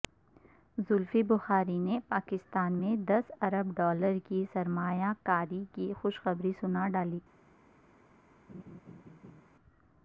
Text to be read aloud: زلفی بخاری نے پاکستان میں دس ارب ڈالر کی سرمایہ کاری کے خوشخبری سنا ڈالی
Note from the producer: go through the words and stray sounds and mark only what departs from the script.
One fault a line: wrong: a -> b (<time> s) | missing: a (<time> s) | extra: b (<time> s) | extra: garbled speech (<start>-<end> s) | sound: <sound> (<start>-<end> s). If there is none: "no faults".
wrong: کے -> کی (5.7 s)
sound: laugh (8.5-9.4 s)